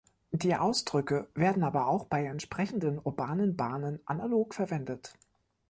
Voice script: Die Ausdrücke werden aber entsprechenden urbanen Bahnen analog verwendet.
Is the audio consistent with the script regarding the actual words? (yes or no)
no